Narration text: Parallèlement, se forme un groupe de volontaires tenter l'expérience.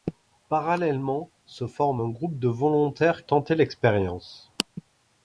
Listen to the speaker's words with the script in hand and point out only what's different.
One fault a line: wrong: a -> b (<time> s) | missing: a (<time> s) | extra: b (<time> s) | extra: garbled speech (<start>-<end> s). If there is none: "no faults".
no faults